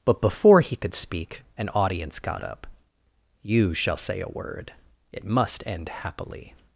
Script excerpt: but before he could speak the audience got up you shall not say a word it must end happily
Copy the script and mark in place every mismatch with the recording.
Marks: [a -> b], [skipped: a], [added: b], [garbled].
but before he could speak [the -> an] audience got up you shall [skipped: not] say a word it must end happily